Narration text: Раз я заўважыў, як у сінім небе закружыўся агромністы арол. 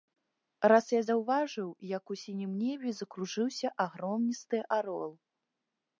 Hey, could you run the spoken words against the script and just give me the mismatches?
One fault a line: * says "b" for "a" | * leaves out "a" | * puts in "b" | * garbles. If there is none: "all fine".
all fine